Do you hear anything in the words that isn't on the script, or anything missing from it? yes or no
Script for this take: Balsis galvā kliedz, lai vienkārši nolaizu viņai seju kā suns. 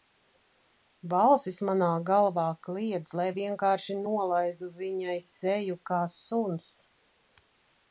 yes